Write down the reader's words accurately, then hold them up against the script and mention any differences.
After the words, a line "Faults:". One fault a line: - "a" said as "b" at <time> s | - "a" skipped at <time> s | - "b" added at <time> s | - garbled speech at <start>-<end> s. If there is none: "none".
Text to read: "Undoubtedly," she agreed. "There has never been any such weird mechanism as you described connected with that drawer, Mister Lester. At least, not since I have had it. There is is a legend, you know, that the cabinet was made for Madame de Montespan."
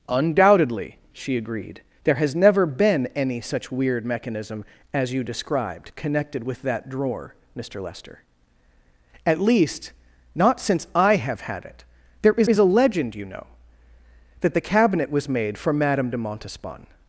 "Undoubtedly," she agreed. "There has never been any such weird mechanism as you described connected with that drawer, Mister Lester. At least, not since I have had it. There is is a legend, you know, that the cabinet was made for Madame de Montespan."
Faults:
none